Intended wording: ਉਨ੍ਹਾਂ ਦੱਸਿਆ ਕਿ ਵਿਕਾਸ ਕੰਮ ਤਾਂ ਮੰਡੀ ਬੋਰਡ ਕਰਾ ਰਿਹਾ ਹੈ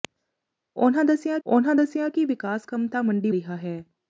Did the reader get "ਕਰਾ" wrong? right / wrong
wrong